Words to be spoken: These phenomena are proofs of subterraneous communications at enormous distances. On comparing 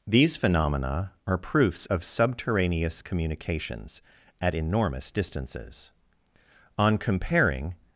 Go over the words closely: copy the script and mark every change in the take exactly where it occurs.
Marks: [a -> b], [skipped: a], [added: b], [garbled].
These phenomena are proofs of subterraneous communications at enormous distances. On comparing